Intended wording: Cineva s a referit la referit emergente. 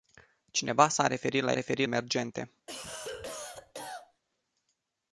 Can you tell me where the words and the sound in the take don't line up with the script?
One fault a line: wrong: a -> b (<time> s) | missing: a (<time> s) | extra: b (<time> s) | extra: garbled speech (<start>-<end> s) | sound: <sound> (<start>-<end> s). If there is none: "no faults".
sound: cough (2.7-4.2 s)